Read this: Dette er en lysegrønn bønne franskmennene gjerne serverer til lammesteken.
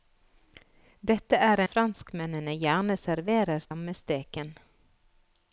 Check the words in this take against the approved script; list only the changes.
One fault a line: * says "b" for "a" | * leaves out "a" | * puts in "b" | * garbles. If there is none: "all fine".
* leaves out "en lysegrønn bønne"
* leaves out "til"